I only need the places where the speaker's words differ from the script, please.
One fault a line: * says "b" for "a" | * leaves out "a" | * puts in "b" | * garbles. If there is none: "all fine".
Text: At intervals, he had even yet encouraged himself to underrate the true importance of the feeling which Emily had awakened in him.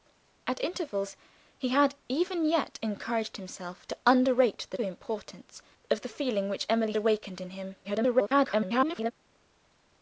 * leaves out "true"
* leaves out "had"
* garbles